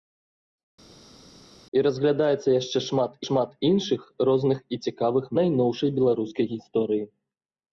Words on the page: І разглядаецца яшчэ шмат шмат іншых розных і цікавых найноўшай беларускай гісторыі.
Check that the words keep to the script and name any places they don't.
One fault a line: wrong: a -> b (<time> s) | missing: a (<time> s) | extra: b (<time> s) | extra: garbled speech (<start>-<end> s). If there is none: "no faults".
no faults